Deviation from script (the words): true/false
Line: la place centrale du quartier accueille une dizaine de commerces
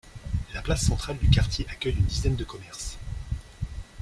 false